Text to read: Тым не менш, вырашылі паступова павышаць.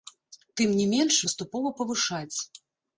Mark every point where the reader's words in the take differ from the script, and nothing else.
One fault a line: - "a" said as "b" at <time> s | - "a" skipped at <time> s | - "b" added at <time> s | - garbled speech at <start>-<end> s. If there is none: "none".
- "вырашылі" skipped at 1.2 s